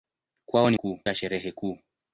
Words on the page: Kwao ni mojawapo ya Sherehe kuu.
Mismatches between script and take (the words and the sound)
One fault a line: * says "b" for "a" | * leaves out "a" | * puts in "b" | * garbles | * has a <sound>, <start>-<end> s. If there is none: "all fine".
* says "kuu" for "mojawapo"